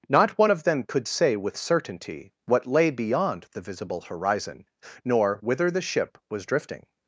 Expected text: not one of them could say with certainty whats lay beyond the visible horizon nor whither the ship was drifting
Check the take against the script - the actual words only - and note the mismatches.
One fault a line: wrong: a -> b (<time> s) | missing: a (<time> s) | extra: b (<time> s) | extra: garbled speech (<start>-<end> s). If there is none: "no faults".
wrong: whats -> what (2.4 s)